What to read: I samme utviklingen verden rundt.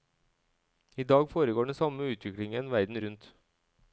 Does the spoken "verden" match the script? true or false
true